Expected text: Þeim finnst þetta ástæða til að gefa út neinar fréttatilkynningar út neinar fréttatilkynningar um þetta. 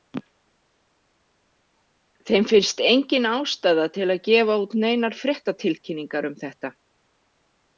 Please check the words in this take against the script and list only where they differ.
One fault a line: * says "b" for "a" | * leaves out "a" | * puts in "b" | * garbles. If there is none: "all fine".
* says "engin" for "þetta"
* leaves out "út neinar fréttatilkynningar"